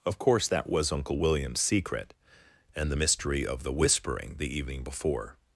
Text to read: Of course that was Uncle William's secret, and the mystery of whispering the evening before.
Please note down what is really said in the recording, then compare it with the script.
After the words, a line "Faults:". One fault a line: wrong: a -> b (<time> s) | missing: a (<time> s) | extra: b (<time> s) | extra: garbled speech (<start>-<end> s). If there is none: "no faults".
Of course that was Uncle William's secret, and the mystery of the whispering the evening before.
Faults:
extra: the (3.6 s)